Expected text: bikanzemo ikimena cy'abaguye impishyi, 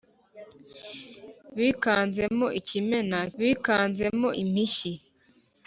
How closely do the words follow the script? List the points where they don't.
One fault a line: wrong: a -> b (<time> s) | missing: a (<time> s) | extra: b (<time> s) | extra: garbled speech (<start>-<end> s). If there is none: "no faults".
wrong: cy'abaguye -> bikanzemo (3.4 s)